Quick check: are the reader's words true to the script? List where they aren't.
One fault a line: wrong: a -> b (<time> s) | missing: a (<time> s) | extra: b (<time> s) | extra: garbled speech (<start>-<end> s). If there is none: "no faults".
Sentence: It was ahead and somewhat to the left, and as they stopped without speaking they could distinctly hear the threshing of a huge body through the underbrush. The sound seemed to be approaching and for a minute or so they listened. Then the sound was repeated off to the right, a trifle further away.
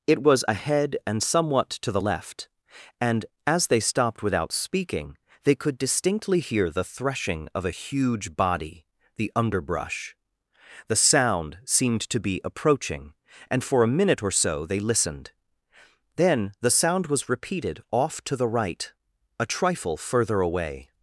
missing: through (8.9 s)